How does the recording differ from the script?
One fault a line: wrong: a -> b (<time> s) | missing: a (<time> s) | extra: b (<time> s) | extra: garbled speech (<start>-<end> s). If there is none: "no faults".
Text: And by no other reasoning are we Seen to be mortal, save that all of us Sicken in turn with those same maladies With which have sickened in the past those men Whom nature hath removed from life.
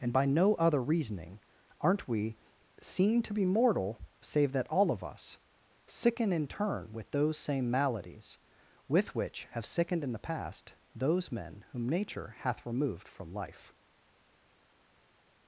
wrong: are -> aren't (1.8 s)